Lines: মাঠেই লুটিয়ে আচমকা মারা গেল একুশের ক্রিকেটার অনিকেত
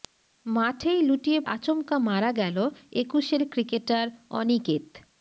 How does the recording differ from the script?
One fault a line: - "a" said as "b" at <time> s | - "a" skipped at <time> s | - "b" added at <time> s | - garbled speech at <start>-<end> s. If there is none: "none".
none